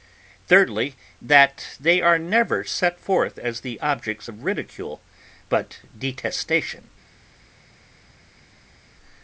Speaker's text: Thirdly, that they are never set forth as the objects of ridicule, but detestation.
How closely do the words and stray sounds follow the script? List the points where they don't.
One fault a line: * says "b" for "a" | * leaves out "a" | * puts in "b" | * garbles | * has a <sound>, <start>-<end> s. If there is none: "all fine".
all fine